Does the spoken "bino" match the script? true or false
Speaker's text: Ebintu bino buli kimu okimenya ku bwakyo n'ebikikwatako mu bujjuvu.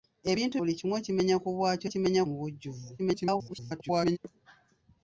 false